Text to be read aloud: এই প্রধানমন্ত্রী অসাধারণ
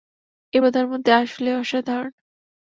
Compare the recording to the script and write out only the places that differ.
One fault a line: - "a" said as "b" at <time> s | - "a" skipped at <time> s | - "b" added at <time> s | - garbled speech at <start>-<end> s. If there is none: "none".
- "আসলেই" added at 1.1 s